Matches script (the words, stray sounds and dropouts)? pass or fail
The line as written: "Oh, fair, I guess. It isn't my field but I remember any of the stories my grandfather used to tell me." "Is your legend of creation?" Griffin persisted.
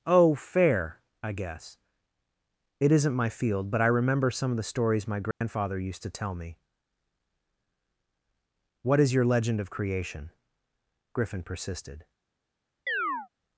fail